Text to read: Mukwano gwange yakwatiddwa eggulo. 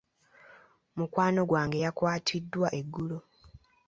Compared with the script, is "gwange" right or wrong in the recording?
right